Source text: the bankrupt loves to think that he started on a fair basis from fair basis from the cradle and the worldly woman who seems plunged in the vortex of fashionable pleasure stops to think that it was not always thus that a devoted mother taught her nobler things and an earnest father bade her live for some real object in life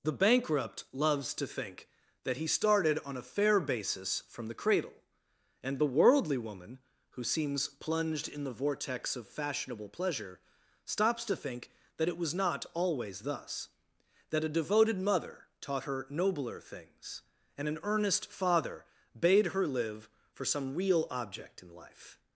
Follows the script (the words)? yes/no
no